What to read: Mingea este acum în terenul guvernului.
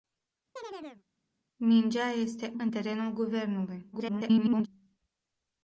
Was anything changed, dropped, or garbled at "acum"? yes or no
yes